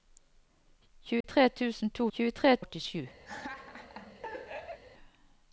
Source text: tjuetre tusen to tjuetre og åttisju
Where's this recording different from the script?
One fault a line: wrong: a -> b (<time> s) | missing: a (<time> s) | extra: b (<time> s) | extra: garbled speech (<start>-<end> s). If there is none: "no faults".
no faults